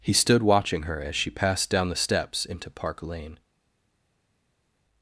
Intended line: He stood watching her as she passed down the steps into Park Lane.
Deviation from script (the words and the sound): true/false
false